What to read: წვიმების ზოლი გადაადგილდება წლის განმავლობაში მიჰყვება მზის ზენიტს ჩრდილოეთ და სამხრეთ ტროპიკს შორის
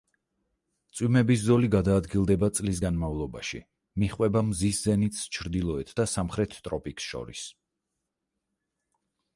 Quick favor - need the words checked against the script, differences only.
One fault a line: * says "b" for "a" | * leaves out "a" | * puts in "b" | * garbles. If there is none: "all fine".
all fine